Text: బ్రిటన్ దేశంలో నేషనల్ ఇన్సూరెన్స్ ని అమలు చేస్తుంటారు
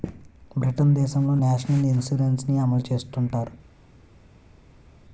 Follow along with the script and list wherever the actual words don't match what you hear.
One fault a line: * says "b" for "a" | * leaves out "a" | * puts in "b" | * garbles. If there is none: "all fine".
all fine